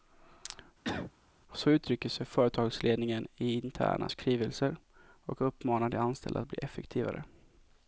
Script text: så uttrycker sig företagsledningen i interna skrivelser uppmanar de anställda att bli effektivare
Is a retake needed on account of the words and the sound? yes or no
yes